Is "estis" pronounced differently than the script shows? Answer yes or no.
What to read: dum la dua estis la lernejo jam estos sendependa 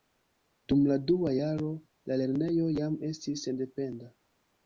yes